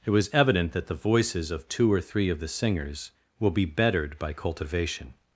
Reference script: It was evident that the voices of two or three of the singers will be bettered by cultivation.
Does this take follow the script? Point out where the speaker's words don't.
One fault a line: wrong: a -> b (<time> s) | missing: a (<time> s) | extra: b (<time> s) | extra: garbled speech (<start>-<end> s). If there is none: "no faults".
no faults